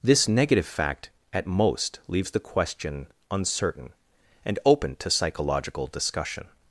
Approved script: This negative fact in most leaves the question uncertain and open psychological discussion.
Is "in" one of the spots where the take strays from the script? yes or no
yes